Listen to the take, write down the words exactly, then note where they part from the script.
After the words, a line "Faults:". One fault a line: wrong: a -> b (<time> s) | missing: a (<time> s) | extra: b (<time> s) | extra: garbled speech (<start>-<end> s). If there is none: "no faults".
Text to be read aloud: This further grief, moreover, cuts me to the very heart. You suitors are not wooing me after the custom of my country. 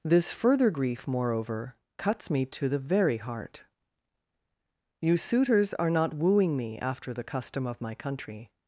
This further grief, moreover, cuts me to the very heart. You suitors are not wooing me after the custom of my country.
Faults:
no faults